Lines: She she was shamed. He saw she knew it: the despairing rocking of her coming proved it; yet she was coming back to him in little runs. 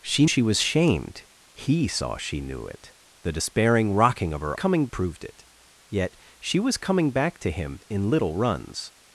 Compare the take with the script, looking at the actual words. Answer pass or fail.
pass